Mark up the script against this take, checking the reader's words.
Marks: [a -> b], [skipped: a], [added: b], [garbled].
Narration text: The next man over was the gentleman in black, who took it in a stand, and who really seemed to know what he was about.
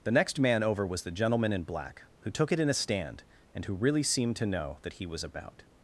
The next man over was the gentleman in black, who took it in a stand, and who really seemed to know [what -> that] he was about.